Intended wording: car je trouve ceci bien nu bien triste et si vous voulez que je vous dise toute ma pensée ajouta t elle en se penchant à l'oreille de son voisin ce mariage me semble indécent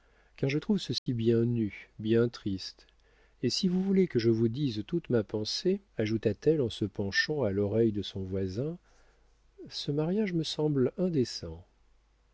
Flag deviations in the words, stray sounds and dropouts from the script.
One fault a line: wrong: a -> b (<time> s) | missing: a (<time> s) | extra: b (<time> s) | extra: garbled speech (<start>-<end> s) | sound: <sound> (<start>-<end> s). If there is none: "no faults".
sound: dropout (1.0-1.1 s)